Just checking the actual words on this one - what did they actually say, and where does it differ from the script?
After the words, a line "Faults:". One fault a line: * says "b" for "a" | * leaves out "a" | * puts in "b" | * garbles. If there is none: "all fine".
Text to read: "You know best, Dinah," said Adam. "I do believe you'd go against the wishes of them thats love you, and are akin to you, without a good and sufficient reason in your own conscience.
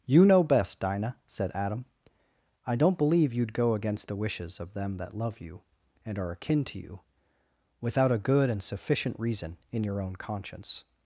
"You know best, Dinah," said Adam. "I don't believe you'd go against the wishes of them that love you, and are akin to you, without a good and sufficient reason in your own conscience.
Faults:
* says "don't" for "do"
* says "that" for "thats"